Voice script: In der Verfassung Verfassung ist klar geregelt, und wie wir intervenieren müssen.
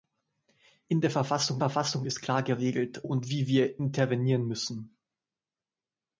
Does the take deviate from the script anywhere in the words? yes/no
no